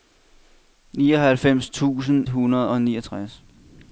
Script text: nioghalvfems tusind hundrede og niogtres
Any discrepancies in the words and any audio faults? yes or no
no